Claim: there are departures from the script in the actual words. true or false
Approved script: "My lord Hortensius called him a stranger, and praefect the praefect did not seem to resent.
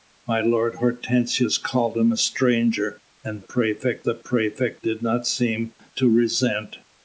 false